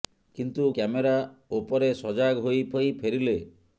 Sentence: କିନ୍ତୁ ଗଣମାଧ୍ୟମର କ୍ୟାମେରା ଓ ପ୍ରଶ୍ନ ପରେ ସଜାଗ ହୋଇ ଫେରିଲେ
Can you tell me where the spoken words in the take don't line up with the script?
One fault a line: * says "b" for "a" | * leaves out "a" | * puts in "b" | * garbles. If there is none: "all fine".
* leaves out "ଗଣମାଧ୍ୟମର"
* leaves out "ପ୍ରଶ୍ନ"
* puts in "ହୋଇ"